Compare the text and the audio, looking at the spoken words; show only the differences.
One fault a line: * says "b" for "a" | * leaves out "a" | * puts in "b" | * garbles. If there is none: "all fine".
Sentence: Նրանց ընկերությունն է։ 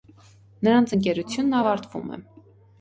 * puts in "ավարտվում"